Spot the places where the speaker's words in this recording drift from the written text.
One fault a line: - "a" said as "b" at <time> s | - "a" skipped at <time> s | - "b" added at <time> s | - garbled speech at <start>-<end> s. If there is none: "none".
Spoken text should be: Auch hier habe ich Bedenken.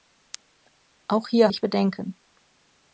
- "habe" skipped at 1.5 s